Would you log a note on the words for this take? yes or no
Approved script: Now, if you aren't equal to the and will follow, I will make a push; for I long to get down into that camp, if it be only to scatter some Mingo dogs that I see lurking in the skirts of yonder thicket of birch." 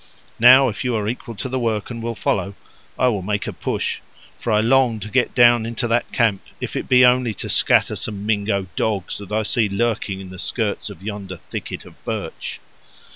yes